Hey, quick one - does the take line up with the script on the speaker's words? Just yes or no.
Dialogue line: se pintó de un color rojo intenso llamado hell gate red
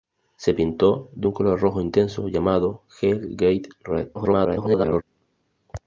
no